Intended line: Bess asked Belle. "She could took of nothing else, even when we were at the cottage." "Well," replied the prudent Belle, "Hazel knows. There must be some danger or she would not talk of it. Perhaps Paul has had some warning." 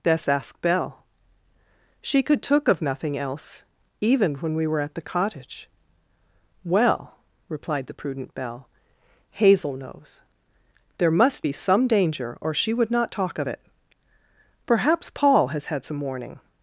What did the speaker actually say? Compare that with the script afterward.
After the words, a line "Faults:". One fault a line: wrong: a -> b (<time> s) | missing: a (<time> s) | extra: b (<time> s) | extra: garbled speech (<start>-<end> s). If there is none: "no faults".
Bess asked Belle. "She could took of nothing else, even when we were at the cottage." "Well," replied the prudent Belle, "Hazel knows. There must be some danger or she would not talk of it. Perhaps Paul has had some warning."
Faults:
no faults